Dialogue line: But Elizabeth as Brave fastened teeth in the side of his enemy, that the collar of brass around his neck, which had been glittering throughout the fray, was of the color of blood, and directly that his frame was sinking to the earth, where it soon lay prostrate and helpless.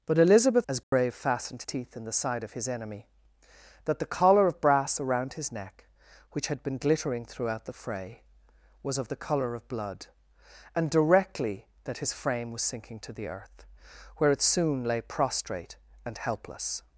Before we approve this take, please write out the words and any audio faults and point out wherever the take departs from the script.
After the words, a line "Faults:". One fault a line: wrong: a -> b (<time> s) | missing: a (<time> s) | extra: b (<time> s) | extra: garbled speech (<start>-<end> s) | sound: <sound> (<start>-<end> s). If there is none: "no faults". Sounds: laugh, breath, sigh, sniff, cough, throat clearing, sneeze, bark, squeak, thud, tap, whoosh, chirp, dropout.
But Elizabeth as Brave fastened teeth in the side of his enemy, that the collar of brass around his neck, which had been glittering throughout the fray, was of the color of blood, and directly that his frame was sinking to the earth, where it soon lay prostrate and helpless.
Faults:
sound: dropout (0.8-0.9 s)